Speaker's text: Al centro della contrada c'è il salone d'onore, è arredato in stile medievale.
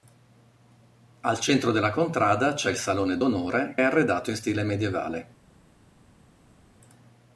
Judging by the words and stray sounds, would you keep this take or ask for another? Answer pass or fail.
pass